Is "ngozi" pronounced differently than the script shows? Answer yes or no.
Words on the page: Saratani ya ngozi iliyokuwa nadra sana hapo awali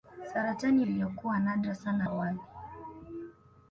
yes